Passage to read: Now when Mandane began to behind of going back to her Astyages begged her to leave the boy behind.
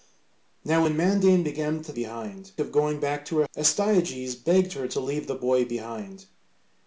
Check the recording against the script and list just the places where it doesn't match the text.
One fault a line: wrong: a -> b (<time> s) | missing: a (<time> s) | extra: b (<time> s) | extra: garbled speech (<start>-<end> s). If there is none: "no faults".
no faults